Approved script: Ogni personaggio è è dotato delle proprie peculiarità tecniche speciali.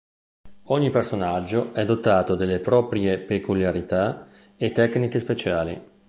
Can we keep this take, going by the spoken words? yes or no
no